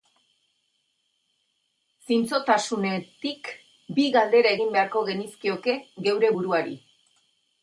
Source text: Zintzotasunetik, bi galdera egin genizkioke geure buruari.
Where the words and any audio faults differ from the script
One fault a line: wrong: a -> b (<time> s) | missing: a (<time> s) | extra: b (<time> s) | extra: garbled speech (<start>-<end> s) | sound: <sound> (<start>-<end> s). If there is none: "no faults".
extra: beharko (4.8 s)